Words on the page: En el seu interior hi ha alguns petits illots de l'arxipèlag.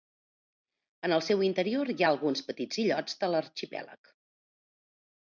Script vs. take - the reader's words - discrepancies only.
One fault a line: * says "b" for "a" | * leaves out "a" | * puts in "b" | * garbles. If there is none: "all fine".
all fine